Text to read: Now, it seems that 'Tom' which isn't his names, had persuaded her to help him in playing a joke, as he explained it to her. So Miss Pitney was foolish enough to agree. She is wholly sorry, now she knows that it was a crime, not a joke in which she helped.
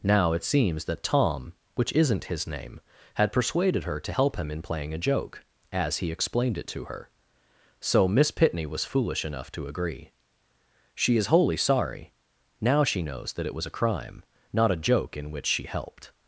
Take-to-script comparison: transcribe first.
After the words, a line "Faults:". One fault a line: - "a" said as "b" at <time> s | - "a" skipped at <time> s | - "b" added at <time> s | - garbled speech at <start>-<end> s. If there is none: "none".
Now, it seems that 'Tom' which isn't his name, had persuaded her to help him in playing a joke, as he explained it to her. So Miss Pitney was foolish enough to agree. She is wholly sorry, now she knows that it was a crime, not a joke in which she helped.
Faults:
- "names" said as "name" at 2.5 s